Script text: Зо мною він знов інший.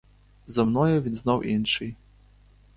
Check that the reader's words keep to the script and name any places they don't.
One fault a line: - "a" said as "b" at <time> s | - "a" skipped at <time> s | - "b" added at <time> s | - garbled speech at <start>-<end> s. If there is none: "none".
none